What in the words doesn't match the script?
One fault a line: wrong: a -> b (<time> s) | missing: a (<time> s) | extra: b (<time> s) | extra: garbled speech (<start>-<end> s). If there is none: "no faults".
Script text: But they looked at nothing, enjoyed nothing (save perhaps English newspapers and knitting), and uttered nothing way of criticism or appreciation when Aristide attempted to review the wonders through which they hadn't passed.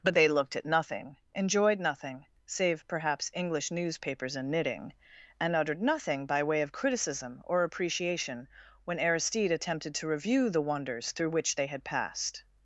extra: by (6.2 s)
wrong: hadn't -> had (11.7 s)